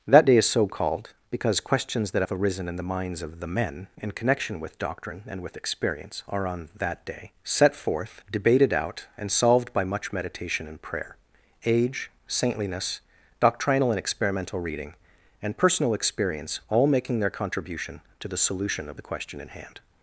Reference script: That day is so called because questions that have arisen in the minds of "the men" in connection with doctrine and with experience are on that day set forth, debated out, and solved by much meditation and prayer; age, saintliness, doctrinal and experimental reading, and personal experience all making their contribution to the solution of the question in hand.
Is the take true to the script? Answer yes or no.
yes